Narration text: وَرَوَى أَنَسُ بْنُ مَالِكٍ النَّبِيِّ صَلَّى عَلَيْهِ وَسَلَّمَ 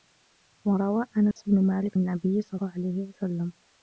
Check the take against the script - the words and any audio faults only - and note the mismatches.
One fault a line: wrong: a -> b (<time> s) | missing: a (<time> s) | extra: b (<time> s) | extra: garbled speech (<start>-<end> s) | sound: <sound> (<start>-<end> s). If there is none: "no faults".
sound: dropout (1.3-1.4 s)